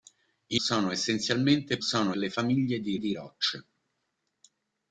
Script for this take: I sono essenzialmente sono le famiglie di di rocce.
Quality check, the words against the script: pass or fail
pass